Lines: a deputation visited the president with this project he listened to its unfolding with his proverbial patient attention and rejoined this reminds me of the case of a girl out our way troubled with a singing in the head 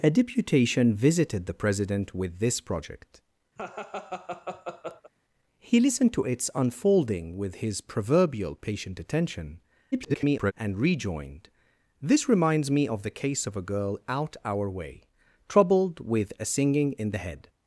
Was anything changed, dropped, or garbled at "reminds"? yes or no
no